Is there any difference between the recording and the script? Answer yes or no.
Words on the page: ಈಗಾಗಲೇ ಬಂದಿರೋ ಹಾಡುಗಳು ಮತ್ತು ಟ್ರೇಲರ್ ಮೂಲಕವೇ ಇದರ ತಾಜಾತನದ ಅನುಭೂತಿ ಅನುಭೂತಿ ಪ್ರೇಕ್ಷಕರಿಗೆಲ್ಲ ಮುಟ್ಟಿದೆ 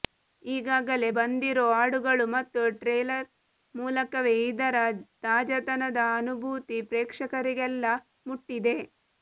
yes